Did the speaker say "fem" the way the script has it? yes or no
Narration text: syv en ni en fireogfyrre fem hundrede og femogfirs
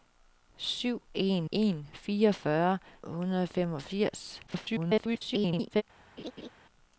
no